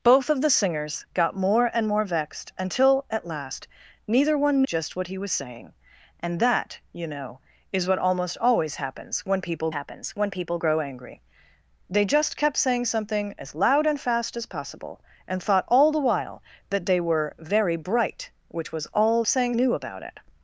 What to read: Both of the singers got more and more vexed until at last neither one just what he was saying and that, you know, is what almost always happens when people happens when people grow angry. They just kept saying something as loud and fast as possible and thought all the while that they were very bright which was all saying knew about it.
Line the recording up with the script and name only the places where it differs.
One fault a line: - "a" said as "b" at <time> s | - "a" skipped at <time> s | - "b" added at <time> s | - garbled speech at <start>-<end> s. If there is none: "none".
none